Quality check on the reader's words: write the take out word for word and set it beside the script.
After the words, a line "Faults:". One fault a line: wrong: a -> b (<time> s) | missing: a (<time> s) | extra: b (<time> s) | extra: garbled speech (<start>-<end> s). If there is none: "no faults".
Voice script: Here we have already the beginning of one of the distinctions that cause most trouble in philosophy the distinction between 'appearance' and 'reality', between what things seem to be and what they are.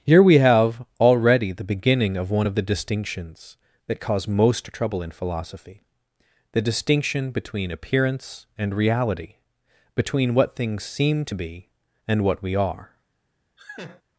Here we have already the beginning of one of the distinctions that cause most trouble in philosophy the distinction between 'appearance' and 'reality', between what things seem to be and what we are.
Faults:
wrong: they -> we (12.4 s)